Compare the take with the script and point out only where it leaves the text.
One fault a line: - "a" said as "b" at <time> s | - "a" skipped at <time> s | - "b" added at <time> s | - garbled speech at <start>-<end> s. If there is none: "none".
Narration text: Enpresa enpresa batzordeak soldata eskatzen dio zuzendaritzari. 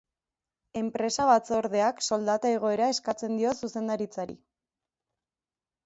- "enpresa" skipped at 1.3 s
- "igoera" added at 2.5 s